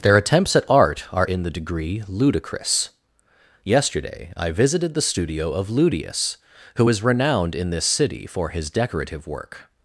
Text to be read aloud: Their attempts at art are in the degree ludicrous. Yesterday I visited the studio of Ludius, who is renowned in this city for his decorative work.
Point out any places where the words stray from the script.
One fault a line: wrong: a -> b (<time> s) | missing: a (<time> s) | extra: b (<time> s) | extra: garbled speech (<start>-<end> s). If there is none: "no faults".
no faults